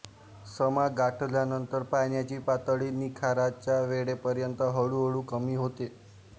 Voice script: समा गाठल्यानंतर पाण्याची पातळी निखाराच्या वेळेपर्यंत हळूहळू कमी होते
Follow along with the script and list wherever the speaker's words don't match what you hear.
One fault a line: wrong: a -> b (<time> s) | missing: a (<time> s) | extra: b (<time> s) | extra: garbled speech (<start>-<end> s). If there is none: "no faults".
no faults